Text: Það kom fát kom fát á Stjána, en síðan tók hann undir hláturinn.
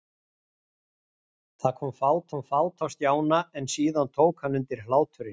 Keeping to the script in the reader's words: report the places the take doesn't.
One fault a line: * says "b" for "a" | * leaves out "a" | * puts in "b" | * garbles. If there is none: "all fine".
all fine